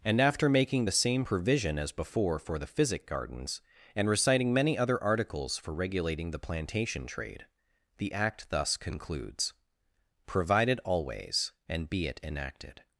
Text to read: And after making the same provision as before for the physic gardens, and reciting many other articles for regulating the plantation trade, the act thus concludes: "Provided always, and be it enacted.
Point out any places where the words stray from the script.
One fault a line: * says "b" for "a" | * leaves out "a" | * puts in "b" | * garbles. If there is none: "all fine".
all fine